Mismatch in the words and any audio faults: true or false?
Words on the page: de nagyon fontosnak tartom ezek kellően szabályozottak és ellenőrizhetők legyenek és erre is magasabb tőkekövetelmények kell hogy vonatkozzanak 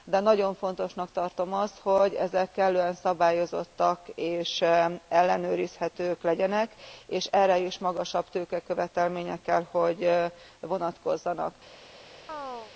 true